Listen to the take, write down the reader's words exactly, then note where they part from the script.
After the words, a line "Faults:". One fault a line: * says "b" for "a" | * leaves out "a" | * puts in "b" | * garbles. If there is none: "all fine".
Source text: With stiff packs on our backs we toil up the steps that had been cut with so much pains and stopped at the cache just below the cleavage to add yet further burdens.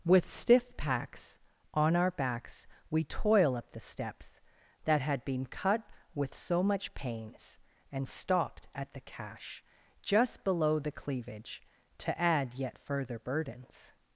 With stiff packs on our backs we toil up the steps that had been cut with so much pains and stopped at the cache just below the cleavage to add yet further burdens.
Faults:
all fine